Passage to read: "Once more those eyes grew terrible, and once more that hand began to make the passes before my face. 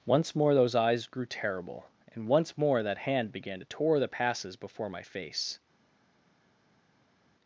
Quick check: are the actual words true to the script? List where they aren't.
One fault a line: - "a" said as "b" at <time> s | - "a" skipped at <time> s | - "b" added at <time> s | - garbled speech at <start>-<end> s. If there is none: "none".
- "make" said as "tore" at 3.6 s